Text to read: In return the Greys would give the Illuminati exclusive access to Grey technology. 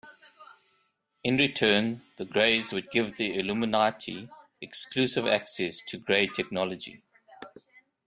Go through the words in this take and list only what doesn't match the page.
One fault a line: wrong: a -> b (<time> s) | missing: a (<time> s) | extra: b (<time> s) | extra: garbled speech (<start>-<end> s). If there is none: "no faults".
no faults